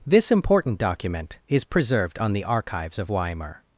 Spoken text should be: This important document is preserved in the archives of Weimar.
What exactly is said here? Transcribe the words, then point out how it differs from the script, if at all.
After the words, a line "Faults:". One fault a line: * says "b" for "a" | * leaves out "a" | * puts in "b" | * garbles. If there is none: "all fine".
This important document is preserved on the archives of Weimar.
Faults:
* says "on" for "in"